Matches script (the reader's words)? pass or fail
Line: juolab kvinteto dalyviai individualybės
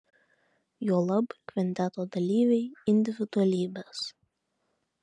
pass